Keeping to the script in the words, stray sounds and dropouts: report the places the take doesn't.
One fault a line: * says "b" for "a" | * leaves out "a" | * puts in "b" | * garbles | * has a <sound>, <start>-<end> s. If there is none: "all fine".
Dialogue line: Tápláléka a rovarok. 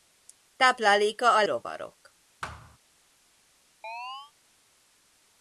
* has a thud, 2.4-2.8 s
* has a chirp, 3.8-4.3 s